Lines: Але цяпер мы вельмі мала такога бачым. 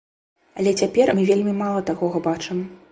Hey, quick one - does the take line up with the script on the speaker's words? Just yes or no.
yes